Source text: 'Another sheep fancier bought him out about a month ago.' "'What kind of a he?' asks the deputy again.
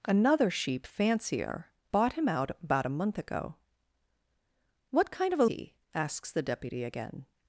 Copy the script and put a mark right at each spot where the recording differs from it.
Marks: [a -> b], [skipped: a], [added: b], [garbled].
'Another sheep fancier bought him out about a month ago.' "'What kind of a he?' asks the deputy again.